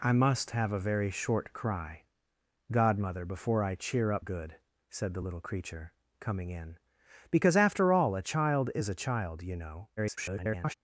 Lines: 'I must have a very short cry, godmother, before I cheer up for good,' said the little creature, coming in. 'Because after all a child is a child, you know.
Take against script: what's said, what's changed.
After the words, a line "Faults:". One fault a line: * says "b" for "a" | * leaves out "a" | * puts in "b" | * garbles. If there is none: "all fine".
'I must have a very short cry, godmother, before I cheer up good,' said the little creature, coming in. 'Because after all a child is a child, you know. [garbled]
Faults:
* leaves out "for"
* garbles